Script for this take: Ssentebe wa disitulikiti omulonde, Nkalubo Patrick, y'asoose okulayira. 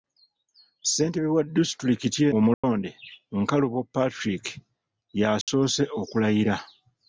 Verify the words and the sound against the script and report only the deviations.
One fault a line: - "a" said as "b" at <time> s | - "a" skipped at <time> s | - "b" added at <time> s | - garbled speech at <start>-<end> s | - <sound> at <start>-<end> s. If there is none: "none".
- dropout at 2.5-2.6 s
- dropout at 5.4-5.5 s